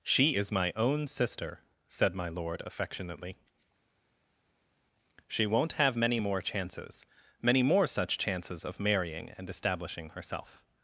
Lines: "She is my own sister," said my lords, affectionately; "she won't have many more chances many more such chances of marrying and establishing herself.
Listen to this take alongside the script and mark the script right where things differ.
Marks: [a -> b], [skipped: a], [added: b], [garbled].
"She is my own sister," said my [lords, -> lord] affectionately; "she won't have many more chances many more such chances of marrying and establishing herself.